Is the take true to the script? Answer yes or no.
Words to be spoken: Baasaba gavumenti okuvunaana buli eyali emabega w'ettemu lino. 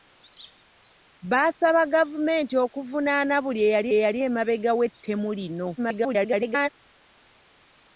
no